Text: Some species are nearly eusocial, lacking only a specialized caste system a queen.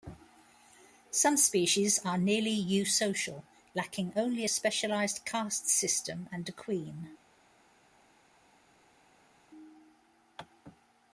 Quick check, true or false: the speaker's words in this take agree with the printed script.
false